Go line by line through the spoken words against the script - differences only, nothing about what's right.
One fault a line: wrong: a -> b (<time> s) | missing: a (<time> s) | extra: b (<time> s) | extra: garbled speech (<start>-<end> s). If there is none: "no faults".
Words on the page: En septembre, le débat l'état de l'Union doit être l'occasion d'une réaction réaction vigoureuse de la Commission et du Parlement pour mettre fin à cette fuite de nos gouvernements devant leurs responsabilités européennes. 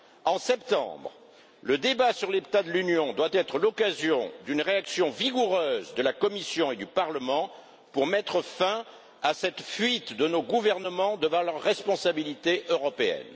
extra: sur (2.1 s)
missing: réaction (5.1 s)